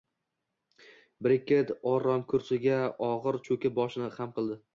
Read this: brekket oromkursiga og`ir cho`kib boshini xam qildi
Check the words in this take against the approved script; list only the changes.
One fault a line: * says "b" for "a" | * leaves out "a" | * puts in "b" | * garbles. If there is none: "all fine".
all fine